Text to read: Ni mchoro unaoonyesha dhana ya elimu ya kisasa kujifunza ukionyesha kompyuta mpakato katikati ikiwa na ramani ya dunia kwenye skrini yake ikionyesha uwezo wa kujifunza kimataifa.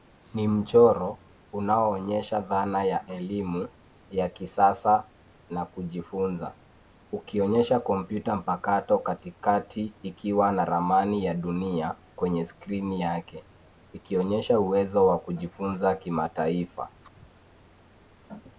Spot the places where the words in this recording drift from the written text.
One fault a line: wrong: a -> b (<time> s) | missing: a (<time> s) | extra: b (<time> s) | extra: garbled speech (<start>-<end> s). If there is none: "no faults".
extra: na (5.5 s)